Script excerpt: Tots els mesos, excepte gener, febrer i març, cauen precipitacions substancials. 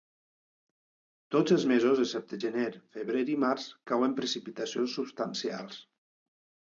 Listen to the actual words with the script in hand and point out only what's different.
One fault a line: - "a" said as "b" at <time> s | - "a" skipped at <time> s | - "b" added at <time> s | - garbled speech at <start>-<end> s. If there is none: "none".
none